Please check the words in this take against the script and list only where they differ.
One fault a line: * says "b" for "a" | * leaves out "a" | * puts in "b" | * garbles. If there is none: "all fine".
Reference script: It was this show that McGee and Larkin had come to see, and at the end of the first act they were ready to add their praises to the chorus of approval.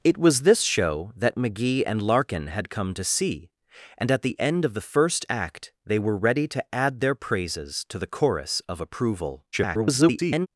* garbles